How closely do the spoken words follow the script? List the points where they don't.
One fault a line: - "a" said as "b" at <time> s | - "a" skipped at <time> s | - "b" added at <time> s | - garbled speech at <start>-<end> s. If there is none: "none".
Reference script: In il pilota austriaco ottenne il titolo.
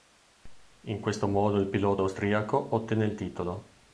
- "questo modo" added at 1.0 s